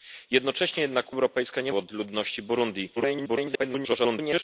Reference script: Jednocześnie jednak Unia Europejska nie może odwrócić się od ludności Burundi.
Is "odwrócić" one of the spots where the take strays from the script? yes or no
yes